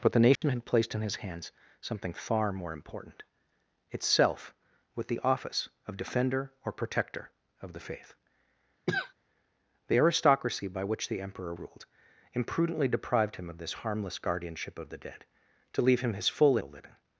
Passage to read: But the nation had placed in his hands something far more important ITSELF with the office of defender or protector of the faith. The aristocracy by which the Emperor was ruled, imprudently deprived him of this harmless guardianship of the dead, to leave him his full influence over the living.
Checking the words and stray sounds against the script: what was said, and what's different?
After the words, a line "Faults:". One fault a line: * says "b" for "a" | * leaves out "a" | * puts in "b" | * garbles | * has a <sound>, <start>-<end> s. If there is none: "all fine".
But the nation had placed in his hands something far more important ITSELF with the office of defender or protector of the faith. The aristocracy by which the Emperor ruled, imprudently deprived him of this harmless guardianship of the dead, to leave him his full the living.
Faults:
* has a dropout, 0.4-0.4 s
* has a cough, 8.9-9.1 s
* leaves out "was"
* leaves out "influence over"